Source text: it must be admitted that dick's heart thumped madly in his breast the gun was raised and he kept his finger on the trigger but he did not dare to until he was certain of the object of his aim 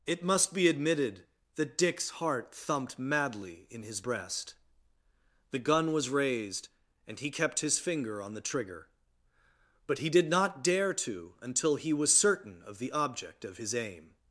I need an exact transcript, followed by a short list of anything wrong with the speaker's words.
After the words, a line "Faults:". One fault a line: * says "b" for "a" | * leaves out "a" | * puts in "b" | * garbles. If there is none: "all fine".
it must be admitted that dick's heart thumped madly in his breast the gun was raised and he kept his finger on the trigger but he did not dare to until he was certain of the object of his aim
Faults:
all fine